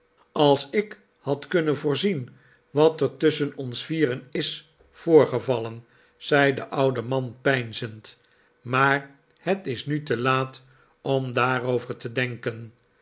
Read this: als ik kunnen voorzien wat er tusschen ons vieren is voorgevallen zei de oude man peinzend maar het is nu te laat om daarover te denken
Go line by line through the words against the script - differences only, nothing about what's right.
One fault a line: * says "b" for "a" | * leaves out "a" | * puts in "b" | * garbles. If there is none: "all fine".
* puts in "had"